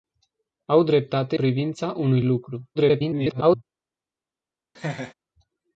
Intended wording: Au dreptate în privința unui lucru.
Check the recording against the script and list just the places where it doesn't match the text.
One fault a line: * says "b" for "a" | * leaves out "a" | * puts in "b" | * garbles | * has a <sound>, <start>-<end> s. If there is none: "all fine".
* leaves out "în"
* garbles
* has a laugh, 4.7-5.1 s